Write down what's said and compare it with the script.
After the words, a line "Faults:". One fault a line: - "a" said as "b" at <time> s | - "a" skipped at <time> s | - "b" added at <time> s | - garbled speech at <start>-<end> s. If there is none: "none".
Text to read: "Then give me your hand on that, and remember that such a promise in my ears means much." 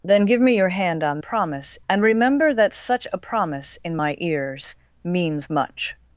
"Then give me your hand on promise, and remember that such a promise in my ears means much."
Faults:
- "that" said as "promise" at 1.2 s